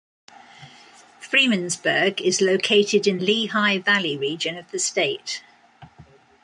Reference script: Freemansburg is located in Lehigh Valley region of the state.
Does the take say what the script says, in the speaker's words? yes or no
yes